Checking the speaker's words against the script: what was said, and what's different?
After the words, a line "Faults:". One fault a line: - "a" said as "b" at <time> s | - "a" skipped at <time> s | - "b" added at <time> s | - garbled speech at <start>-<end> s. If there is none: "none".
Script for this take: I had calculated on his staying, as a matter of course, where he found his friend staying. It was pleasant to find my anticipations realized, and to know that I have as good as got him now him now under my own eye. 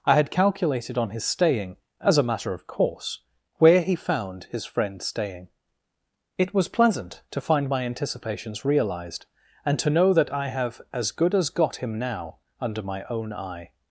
I had calculated on his staying, as a matter of course, where he found his friend staying. It was pleasant to find my anticipations realized, and to know that I have as good as got him now under my own eye.
Faults:
- "him now" skipped at 12.4 s